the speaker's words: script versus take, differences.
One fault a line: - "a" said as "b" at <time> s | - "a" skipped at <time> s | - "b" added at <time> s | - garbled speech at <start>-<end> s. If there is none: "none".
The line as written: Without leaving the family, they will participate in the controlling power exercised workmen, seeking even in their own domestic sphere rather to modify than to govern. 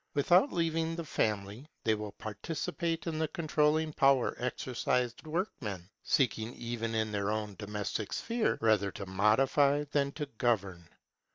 none